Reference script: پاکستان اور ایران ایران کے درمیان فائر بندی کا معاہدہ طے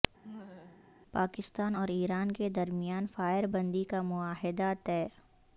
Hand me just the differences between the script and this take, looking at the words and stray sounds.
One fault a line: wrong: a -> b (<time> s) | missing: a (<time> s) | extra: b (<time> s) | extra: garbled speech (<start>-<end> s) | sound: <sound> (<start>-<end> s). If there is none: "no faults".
sound: laugh (0.2-0.9 s)
missing: ایران (2.3 s)